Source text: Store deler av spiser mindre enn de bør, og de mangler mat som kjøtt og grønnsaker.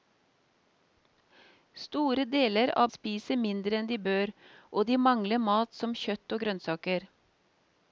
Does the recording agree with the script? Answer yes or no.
yes